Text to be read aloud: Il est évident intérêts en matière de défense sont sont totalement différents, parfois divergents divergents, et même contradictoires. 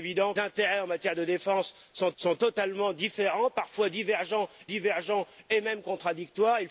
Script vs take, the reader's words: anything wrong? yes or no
no